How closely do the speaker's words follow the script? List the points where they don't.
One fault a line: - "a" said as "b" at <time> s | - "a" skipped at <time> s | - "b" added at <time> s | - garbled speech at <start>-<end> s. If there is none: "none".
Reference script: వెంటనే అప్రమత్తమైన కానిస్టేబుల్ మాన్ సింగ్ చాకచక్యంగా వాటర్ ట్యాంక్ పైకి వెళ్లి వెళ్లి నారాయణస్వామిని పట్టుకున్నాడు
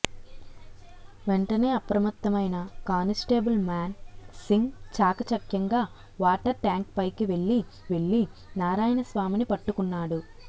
none